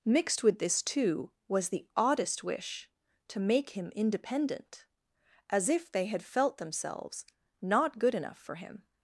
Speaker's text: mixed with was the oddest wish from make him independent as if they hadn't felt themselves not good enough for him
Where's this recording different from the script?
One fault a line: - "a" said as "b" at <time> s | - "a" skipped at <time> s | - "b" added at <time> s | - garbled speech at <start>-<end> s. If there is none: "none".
- "this too" added at 0.6 s
- "from" said as "to" at 3.3 s
- "hadn't" said as "had" at 6.1 s